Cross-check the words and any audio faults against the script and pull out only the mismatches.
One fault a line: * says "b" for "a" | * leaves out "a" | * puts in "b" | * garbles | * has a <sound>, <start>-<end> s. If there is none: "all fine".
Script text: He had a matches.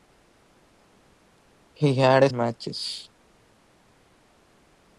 all fine